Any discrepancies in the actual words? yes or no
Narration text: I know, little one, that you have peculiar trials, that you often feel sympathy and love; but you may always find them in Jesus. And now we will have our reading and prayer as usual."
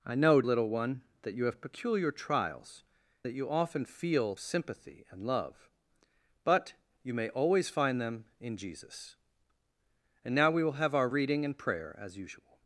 no